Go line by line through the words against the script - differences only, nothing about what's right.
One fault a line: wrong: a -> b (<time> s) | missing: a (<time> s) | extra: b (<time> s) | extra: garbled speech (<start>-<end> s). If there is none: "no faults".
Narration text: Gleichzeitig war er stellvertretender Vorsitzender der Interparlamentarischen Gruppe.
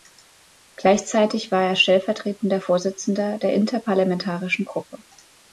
no faults